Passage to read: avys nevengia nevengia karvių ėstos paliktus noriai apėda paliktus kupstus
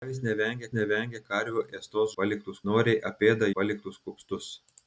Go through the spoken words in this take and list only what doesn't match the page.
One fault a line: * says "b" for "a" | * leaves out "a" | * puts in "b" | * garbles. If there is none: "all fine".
all fine